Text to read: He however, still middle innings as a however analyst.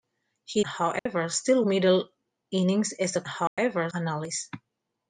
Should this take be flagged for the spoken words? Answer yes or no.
no